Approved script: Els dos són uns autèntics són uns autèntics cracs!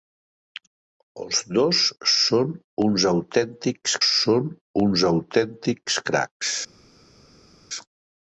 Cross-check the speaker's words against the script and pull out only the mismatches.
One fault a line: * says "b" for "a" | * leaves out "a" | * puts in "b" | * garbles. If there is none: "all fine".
all fine